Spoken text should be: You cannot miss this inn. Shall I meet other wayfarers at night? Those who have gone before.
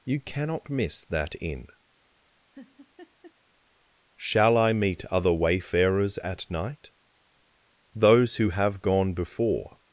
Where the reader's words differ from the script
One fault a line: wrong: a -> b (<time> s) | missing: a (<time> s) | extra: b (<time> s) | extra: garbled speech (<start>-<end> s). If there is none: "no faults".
wrong: this -> that (1.1 s)